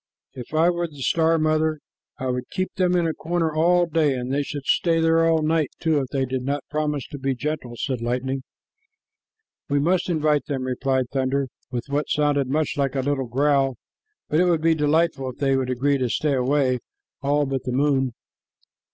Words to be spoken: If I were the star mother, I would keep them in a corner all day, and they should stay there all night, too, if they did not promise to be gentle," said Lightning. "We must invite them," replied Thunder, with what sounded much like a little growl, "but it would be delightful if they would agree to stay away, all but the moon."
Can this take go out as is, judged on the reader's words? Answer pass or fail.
pass